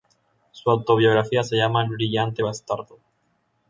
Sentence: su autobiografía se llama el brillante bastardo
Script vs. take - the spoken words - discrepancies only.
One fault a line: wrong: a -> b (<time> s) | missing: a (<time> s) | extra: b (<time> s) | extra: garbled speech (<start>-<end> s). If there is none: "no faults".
no faults